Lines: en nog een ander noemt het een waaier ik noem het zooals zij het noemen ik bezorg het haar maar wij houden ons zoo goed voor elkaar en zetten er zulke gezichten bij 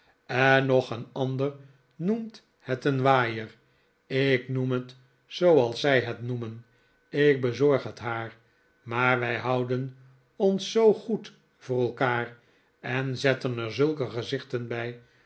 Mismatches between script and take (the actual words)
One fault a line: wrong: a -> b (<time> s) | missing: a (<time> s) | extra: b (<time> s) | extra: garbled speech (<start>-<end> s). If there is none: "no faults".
no faults